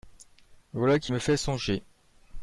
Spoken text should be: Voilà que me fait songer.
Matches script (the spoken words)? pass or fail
fail